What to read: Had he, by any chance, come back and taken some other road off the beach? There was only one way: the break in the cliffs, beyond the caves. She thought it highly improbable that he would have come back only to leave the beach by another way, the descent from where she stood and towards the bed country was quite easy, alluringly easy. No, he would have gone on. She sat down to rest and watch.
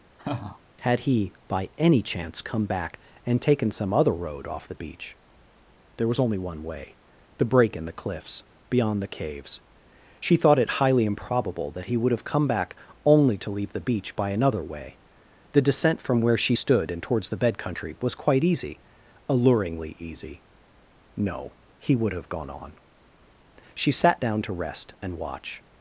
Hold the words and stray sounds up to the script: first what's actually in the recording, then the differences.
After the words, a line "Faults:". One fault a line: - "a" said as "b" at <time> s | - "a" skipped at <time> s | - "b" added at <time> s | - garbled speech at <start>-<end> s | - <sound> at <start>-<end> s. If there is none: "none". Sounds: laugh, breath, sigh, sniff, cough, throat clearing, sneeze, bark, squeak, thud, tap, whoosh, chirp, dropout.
Had he, by any chance, come back and taken some other road off the beach? There was only one way: the break in the cliffs, beyond the caves. She thought it highly improbable that he would have come back only to leave the beach by another way, the descent from where she stood and towards the bed country was quite easy, alluringly easy. No, he would have gone on. She sat down to rest and watch.
Faults:
- laugh at 0.2-0.6 s